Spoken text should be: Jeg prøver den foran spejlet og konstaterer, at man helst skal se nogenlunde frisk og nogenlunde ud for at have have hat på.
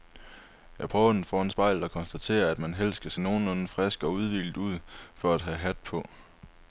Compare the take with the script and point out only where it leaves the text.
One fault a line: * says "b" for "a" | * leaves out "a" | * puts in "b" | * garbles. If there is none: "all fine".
* says "udhvilet" for "nogenlunde"
* leaves out "have"